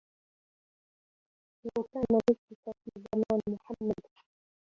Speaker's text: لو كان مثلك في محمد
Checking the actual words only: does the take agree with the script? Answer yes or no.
no